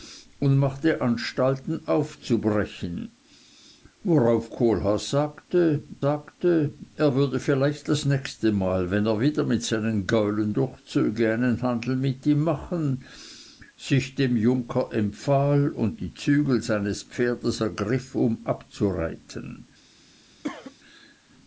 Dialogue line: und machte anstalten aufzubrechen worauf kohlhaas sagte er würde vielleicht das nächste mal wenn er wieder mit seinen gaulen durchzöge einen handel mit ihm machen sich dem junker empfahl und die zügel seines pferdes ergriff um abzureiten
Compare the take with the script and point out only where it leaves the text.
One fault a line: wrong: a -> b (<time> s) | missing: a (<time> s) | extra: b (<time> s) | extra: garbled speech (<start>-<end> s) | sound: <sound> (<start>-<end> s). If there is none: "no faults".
extra: sagte (6.0 s)
sound: cough (20.4-20.8 s)